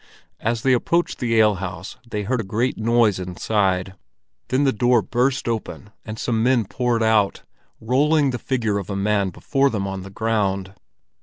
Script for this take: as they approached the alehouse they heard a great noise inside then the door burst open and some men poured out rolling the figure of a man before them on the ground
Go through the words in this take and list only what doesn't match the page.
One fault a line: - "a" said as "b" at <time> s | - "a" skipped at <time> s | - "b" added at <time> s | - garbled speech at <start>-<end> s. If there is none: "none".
none